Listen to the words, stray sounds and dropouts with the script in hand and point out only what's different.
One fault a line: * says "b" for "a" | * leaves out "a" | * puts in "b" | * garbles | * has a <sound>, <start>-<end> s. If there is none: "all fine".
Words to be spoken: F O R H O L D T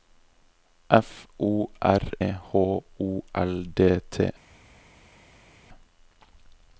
all fine